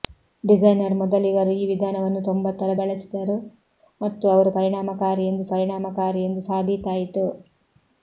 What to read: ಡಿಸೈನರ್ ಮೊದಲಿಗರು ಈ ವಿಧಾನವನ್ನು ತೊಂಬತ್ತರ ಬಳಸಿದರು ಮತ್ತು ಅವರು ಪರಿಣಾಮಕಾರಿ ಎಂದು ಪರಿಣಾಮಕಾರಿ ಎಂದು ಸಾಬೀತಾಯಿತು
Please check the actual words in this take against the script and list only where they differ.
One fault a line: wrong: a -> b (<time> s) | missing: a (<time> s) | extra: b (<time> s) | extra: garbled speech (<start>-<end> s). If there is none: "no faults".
no faults